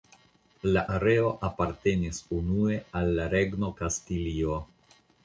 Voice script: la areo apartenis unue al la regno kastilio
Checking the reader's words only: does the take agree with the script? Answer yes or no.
yes